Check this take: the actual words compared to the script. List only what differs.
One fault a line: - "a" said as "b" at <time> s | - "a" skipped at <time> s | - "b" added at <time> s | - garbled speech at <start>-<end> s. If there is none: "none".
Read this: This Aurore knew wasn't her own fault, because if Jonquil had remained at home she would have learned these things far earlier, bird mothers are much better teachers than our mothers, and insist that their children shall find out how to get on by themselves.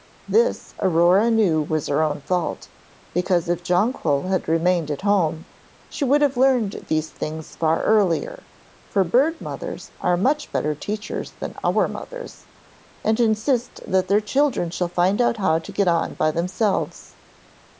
- "wasn't" said as "was" at 1.6 s
- "for" added at 8.9 s